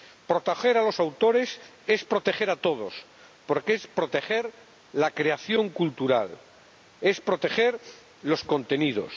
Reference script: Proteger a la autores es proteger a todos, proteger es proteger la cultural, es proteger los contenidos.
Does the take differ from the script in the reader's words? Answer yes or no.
yes